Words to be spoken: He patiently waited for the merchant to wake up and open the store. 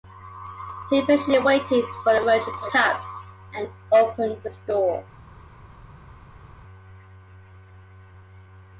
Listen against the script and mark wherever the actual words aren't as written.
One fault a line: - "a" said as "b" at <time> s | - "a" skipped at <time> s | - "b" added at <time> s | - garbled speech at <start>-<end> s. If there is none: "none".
- "wake" skipped at 2.7 s